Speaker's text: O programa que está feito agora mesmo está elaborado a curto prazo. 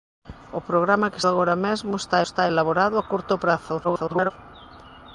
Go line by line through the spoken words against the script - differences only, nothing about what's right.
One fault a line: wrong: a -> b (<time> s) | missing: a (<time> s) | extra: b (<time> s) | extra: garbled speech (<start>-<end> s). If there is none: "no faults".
missing: está feito (1.2 s)
extra: está (2.2 s)
extra: garbled speech (3.8-4.3 s)